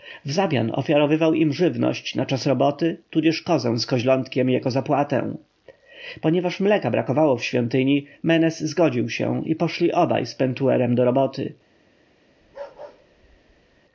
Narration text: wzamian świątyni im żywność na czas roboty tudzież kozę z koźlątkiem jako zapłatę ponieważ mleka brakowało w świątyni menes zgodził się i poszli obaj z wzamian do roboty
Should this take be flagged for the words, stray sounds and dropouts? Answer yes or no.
yes